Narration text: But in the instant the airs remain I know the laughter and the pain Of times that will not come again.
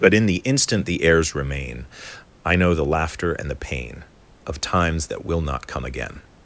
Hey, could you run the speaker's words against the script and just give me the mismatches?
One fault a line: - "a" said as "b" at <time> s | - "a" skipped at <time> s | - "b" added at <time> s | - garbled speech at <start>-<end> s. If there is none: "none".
none